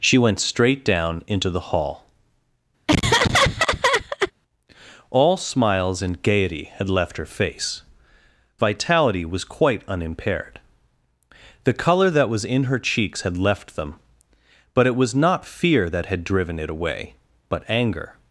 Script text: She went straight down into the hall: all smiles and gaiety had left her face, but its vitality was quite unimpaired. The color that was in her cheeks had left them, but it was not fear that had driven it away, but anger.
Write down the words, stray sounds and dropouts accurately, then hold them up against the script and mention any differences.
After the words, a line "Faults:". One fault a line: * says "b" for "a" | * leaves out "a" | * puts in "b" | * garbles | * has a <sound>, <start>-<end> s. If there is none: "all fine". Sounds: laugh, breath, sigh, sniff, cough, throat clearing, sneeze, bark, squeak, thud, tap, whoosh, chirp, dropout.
She went straight down into the hall: all smiles and gaiety had left her face, vitality was quite unimpaired. The color that was in her cheeks had left them, but it was not fear that had driven it away, but anger.
Faults:
* has a laugh, 2.9-4.3 s
* leaves out "but its"